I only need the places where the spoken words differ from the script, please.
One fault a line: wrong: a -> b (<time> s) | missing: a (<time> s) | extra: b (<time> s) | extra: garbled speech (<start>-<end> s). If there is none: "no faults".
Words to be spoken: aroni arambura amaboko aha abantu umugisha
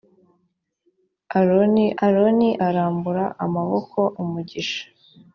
extra: aroni (2.0 s)
missing: aha abantu (4.0 s)